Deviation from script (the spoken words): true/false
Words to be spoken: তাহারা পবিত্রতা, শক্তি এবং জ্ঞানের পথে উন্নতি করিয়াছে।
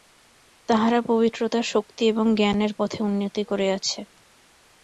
false